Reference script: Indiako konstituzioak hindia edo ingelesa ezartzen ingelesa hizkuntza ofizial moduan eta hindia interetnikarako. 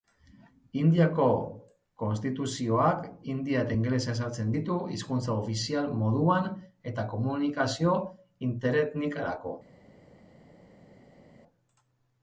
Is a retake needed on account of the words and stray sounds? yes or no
yes